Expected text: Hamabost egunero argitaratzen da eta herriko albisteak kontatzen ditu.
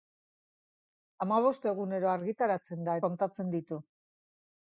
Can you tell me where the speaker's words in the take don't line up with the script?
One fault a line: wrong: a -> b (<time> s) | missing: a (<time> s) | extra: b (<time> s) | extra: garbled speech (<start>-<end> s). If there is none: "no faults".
missing: eta herriko albisteak (3.0 s)